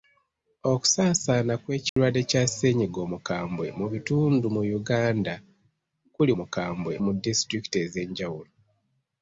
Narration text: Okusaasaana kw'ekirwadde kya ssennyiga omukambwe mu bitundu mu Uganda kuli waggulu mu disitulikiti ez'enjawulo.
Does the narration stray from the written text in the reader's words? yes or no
yes